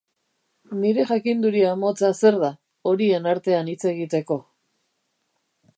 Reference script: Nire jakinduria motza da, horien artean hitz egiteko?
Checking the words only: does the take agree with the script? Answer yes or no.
no